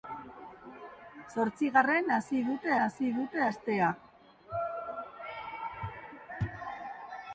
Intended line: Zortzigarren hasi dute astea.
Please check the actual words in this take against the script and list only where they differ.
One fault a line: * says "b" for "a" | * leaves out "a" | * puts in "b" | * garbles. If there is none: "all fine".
* puts in "hasi dute"